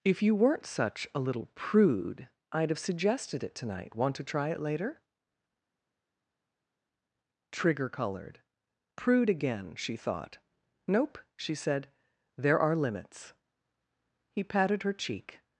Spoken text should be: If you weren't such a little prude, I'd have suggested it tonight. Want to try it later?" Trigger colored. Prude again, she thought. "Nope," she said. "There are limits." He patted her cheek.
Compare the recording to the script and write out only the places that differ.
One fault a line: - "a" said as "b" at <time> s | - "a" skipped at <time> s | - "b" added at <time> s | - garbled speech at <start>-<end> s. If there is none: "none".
none